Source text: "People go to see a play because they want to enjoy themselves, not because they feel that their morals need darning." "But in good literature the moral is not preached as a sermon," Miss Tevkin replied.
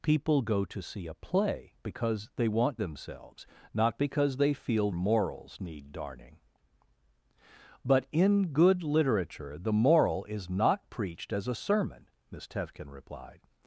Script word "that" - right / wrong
wrong